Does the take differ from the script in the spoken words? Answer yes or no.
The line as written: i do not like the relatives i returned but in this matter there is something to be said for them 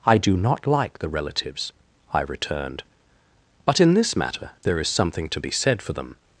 no